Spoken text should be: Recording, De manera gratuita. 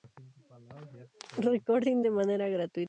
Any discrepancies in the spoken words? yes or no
no